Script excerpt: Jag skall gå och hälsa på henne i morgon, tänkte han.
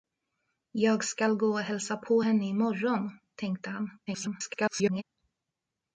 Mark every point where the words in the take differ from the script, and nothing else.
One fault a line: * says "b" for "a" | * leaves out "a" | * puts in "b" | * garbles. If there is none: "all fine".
* garbles